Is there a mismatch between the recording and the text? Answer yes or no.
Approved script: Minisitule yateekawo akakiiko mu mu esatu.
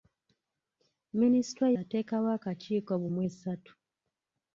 no